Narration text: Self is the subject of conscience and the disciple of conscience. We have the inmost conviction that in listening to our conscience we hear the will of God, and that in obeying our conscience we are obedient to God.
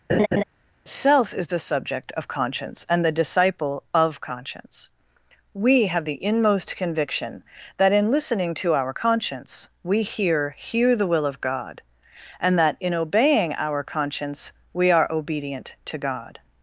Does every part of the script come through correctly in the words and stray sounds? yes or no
no